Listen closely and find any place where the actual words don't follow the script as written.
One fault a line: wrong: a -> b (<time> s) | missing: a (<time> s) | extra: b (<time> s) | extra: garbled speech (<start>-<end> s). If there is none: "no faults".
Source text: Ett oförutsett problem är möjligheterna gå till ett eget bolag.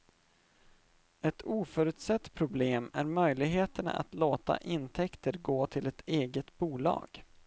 extra: att låta intäkter (3.9 s)